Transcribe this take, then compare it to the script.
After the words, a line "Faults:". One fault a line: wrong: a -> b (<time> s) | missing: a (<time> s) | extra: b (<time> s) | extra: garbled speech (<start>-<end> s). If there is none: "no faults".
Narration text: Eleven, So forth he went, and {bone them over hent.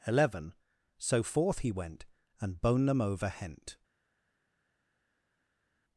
Eleven, So forth he went, and {bone them over hent.
Faults:
no faults